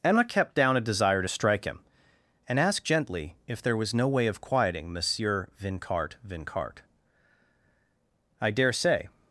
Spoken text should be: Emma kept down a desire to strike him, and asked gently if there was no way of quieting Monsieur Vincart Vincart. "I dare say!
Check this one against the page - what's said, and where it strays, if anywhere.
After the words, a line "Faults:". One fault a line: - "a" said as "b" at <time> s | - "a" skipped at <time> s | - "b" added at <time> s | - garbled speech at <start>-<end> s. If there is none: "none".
Emma kept down a desire to strike him, and asked gently if there was no way of quieting Monsieur Vincart Vincart. "I dare say!
Faults:
none